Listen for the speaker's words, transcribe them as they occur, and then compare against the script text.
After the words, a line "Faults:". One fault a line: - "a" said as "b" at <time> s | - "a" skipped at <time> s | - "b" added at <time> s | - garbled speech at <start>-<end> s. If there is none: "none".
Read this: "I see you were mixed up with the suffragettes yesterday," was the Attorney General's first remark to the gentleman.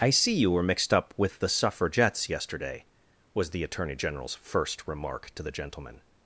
"I see you were mixed up with the suffragettes yesterday," was the Attorney General's first remark to the gentleman.
Faults:
none